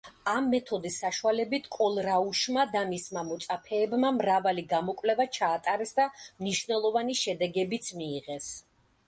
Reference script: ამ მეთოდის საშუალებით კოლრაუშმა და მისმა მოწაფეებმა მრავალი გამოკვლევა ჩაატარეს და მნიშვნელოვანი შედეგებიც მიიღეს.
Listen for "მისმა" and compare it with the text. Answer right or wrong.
right